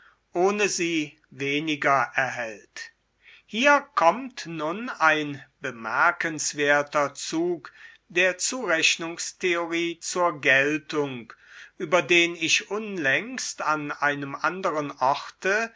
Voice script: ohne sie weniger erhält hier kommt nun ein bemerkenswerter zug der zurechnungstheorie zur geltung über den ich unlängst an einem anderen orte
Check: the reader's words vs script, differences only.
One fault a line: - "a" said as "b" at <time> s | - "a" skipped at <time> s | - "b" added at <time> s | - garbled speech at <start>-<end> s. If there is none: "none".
none